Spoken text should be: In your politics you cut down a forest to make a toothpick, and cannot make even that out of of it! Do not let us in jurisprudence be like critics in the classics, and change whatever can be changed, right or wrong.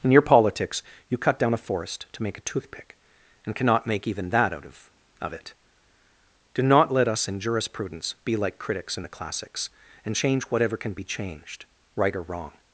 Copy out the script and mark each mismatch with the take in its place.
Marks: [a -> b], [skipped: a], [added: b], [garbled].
In your politics you cut down a forest to make a toothpick, and cannot make even that out of of it! Do not let us in jurisprudence be like critics in the classics, and change whatever can be changed, right or wrong.